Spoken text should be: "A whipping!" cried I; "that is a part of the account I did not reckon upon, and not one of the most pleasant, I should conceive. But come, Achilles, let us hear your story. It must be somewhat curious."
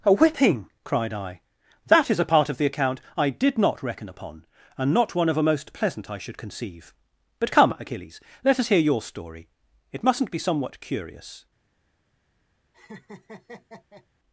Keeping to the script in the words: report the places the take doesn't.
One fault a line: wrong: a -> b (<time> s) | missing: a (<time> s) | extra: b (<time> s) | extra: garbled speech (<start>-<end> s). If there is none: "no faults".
wrong: the -> a (5.4 s)
wrong: must -> mustn't (10.0 s)